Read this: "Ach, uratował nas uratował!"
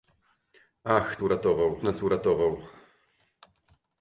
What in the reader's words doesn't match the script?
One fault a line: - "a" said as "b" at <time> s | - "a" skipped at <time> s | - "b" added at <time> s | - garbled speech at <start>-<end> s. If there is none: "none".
none